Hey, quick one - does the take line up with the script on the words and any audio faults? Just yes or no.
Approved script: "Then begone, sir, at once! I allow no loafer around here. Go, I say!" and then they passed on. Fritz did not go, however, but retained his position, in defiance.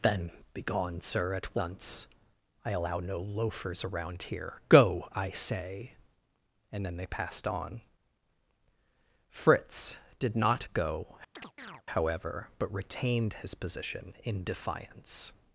no